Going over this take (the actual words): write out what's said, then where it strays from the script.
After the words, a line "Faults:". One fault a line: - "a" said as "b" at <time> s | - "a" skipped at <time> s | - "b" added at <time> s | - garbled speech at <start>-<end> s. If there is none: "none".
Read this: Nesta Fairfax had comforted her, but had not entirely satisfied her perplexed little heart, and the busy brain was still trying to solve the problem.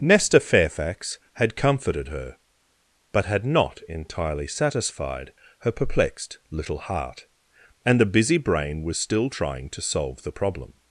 Nesta Fairfax had comforted her, but had not entirely satisfied her perplexed little heart, and the busy brain was still trying to solve the problem.
Faults:
none